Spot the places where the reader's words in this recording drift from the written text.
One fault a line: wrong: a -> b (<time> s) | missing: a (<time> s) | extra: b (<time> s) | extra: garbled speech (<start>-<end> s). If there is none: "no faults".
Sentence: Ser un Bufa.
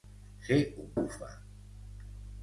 no faults